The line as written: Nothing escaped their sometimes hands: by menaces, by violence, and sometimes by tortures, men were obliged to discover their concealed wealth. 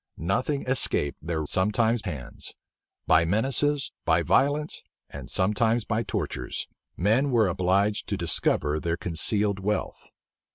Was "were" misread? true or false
false